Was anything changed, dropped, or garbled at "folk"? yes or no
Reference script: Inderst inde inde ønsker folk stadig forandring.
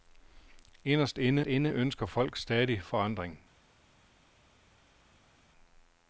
no